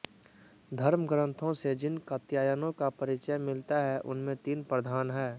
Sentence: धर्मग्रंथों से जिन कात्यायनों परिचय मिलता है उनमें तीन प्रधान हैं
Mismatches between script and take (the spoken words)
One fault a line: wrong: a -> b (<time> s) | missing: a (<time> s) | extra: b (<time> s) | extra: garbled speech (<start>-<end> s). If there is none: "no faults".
extra: का (2.7 s)